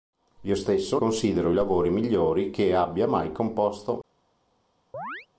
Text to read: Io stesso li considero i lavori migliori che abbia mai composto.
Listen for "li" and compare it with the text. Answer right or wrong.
wrong